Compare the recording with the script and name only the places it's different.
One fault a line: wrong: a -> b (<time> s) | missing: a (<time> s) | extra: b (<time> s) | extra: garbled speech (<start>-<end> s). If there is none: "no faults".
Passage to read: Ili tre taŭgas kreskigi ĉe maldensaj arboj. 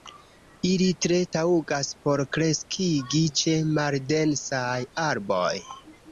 extra: por (2.0 s)